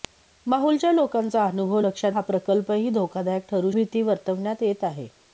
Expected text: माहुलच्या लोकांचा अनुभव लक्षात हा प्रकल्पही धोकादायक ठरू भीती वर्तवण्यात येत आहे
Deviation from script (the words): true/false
false